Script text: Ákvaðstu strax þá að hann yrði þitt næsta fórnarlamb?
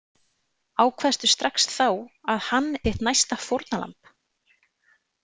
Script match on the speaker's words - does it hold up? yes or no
no